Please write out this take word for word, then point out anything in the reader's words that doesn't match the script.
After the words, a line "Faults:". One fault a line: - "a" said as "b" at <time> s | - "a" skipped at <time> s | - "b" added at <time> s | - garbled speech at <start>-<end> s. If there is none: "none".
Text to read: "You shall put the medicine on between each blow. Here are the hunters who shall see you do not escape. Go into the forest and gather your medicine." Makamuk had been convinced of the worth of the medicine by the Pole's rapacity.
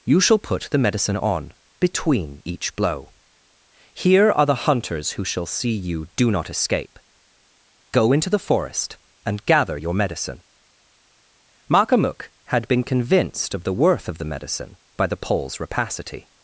"You shall put the medicine on between each blow. Here are the hunters who shall see you do not escape. Go into the forest and gather your medicine." Makamuk had been convinced of the worth of the medicine by the Pole's rapacity.
Faults:
none